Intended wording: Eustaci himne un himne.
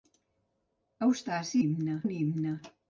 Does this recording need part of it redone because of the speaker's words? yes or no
no